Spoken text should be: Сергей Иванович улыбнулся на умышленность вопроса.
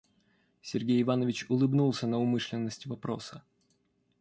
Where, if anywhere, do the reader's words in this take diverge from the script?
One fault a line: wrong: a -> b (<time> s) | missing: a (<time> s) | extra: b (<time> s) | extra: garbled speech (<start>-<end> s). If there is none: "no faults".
no faults